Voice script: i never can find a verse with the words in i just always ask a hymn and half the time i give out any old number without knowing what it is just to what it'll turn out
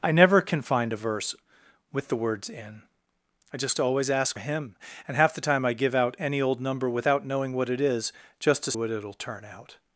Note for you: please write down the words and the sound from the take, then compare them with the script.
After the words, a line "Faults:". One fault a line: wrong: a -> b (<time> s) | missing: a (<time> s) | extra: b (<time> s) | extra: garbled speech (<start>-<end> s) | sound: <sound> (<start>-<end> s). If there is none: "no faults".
i never can find a verse with the words in i just always ask a hymn and half the time i give out any old number without knowing what it is just to what it'll turn out
Faults:
no faults